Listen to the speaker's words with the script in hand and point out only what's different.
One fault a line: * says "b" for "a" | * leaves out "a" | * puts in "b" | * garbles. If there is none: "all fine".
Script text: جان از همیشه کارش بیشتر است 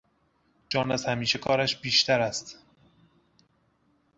all fine